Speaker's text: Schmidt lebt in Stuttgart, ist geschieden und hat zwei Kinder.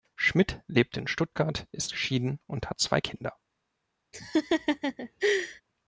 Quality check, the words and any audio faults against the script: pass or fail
fail